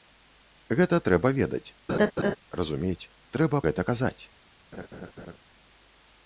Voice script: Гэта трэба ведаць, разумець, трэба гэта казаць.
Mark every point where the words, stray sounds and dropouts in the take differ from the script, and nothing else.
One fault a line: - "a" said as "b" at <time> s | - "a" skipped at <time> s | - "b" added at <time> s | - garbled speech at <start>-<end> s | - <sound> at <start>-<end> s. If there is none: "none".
- laugh at 1.9-2.4 s
- laugh at 4.7-5.4 s